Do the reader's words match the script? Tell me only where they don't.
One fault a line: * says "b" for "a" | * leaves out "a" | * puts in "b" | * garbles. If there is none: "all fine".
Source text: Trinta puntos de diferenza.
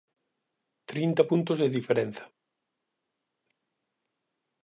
all fine